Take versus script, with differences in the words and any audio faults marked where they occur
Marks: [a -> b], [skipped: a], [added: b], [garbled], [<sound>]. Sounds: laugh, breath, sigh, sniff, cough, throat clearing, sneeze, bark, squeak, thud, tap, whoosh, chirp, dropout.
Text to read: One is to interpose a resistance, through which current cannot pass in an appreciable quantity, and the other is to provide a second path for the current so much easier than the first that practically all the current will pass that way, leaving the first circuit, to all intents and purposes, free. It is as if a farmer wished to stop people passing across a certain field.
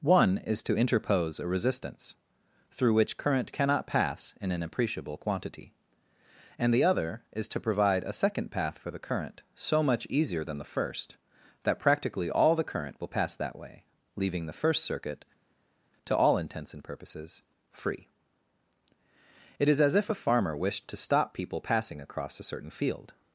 One is to interpose a resistance, through which current cannot pass in an appreciable quantity, and the other is to provide a second path for the current so much easier than the first that practically all the current will pass that way, leaving the first circuit, to all intents and purposes, free. It is as if a farmer wished to stop people passing across a certain field.